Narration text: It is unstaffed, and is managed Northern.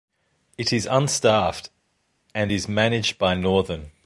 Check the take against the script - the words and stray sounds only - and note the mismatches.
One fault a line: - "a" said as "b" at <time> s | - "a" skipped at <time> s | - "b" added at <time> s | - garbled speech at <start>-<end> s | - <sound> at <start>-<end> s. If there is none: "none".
- "by" added at 3.2 s